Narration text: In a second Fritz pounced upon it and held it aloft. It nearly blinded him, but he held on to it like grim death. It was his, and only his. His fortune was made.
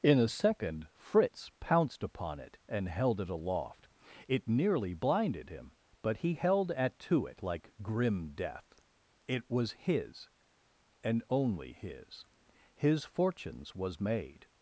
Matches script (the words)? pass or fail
fail